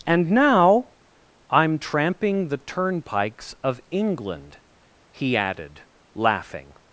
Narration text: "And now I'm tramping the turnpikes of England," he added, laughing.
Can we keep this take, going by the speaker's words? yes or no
yes